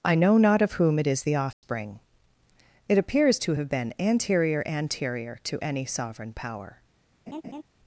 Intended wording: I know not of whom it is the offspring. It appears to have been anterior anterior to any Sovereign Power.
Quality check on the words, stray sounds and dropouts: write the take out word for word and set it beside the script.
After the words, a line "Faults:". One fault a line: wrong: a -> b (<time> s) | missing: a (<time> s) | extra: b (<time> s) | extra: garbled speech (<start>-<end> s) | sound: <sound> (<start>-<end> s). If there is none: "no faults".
I know not of whom it is the offspring. It appears to have been anterior anterior to any Sovereign Power.
Faults:
sound: dropout (1.5-1.6 s)
sound: laugh (7.3-7.6 s)